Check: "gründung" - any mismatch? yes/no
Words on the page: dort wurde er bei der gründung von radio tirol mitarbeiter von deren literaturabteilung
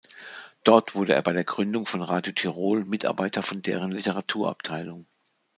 no